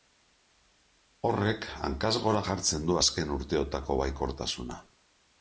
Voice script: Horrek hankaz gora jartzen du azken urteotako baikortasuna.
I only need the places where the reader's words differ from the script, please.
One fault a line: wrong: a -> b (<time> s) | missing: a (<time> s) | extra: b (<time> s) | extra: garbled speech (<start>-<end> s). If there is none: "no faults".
no faults